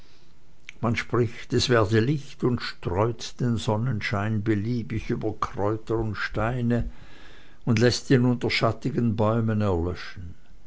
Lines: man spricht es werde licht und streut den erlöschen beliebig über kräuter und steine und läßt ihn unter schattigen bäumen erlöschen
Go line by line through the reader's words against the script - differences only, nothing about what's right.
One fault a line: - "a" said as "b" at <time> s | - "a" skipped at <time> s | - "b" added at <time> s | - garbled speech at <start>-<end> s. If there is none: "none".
- "erlöschen" said as "sonnenschein" at 3.6 s